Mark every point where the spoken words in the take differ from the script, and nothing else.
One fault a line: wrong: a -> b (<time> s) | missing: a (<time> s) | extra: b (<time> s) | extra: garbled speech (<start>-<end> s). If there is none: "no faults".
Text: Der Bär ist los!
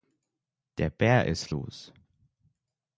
no faults